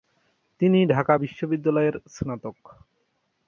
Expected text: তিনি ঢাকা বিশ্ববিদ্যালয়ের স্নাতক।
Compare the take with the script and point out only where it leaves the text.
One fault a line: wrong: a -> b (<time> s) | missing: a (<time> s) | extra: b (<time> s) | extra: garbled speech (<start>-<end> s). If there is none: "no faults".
no faults